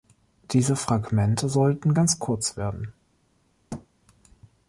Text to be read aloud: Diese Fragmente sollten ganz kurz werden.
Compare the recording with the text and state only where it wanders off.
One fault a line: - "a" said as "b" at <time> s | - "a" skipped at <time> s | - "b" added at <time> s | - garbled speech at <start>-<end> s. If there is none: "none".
none